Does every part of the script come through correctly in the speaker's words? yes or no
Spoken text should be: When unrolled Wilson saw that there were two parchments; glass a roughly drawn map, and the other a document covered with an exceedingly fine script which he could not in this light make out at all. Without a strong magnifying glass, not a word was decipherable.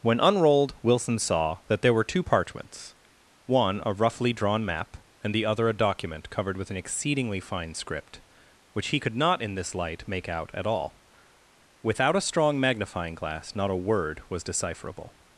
no